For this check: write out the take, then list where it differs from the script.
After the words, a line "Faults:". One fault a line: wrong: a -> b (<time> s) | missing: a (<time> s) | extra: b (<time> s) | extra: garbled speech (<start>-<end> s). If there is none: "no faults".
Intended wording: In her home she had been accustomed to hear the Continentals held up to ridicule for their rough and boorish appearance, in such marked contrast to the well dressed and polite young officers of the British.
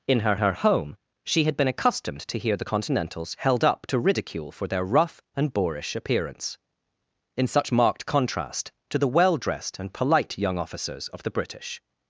In her her home she had been accustomed to hear the Continentals held up to ridicule for their rough and boorish appearance, in such marked contrast to the well dressed and polite young officers of the British.
Faults:
extra: her (0.4 s)